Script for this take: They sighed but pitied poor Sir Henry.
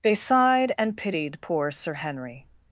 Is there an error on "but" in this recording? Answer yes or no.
yes